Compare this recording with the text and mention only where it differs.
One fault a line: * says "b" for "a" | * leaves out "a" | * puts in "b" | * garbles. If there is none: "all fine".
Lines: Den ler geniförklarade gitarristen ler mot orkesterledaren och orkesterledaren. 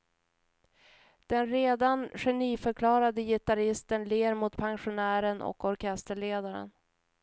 * says "redan" for "ler"
* says "pensionären" for "orkesterledaren"